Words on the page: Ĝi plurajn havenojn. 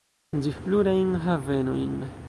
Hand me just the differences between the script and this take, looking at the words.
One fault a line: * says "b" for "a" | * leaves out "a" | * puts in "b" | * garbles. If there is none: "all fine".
all fine